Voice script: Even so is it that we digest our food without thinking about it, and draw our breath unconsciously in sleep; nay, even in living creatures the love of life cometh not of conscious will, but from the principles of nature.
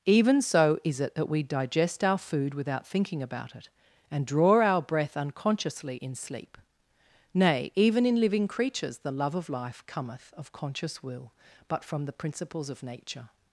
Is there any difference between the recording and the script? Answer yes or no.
yes